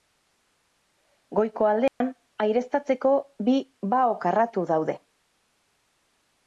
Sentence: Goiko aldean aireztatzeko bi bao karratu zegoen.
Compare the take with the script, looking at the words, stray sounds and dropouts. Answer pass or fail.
fail